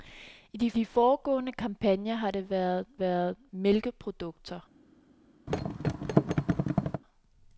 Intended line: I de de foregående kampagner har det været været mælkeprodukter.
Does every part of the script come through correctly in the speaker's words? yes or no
yes